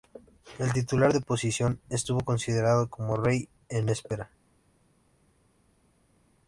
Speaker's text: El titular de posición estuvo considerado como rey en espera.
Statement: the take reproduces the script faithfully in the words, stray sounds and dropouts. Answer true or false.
true